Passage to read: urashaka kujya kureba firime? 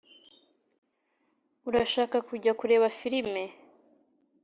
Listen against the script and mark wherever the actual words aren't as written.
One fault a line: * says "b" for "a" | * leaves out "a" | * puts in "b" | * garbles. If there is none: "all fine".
all fine